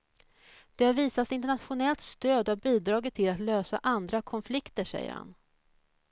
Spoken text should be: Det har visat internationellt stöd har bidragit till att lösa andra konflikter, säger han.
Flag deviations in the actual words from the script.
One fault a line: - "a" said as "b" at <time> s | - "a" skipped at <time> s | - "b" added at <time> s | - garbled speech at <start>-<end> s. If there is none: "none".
none